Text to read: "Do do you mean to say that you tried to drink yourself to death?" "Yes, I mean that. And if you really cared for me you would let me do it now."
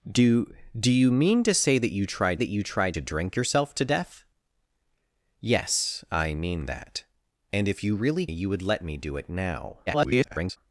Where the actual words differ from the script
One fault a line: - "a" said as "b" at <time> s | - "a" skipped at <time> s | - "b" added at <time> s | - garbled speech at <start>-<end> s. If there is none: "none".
- "that you tried" added at 2.3 s
- "cared for me" skipped at 8.3 s
- garbled speech at 9.9-10.6 s